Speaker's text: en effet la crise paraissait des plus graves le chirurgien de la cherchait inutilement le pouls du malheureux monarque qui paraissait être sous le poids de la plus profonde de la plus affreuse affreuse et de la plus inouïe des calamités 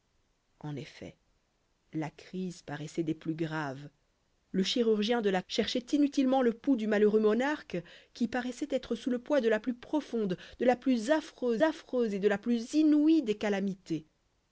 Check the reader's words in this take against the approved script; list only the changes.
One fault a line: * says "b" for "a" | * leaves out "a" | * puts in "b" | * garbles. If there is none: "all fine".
all fine